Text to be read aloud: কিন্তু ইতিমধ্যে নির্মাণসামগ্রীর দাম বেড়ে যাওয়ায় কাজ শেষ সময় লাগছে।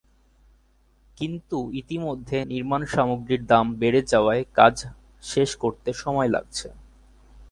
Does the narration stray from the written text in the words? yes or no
yes